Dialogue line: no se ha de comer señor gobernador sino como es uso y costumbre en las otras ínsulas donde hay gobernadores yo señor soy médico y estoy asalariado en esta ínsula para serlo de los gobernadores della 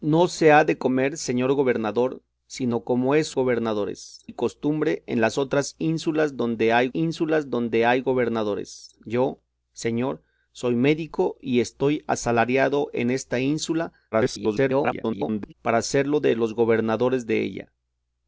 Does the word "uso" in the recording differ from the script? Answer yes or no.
yes